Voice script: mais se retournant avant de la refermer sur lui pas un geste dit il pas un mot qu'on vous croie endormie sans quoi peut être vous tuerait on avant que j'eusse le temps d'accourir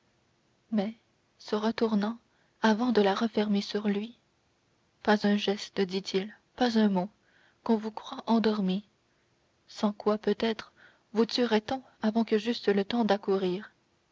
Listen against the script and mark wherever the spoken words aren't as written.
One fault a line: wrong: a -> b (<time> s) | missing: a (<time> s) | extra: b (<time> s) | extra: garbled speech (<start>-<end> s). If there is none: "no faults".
no faults